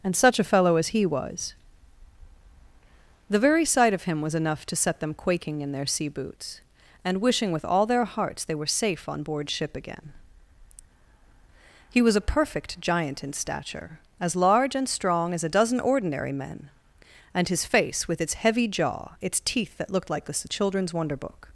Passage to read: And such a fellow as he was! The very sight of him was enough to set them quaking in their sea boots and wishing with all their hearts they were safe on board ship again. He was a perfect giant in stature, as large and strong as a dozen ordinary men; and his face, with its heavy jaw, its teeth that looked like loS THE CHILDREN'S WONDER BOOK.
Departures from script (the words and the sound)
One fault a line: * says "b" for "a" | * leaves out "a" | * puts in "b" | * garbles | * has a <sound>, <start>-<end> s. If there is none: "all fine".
* leaves out "loS"